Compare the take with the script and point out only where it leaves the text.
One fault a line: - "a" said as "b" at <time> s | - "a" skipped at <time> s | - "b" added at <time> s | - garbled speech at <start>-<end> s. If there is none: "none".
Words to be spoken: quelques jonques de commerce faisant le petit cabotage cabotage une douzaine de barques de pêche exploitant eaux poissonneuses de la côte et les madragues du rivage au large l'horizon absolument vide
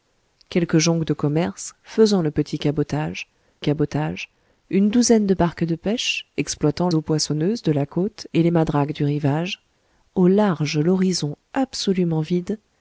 none